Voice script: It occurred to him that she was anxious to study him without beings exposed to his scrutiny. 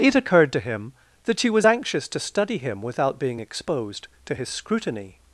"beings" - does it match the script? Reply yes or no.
no